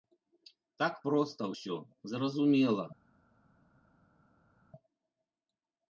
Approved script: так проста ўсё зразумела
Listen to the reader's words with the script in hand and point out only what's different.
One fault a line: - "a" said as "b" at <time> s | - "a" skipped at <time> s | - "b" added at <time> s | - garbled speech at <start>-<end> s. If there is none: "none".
none